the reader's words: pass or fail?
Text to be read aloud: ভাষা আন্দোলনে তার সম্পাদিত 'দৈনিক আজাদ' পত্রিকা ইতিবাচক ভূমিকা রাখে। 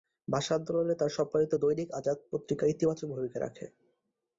pass